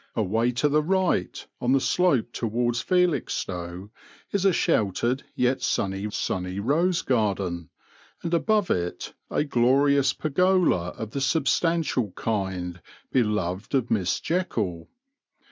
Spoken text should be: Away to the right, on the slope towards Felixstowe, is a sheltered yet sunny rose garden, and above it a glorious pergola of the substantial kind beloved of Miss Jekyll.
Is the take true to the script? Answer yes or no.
no